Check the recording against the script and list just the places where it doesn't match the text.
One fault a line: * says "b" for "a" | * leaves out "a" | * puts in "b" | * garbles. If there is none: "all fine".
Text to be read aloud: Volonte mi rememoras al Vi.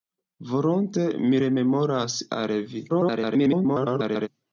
* garbles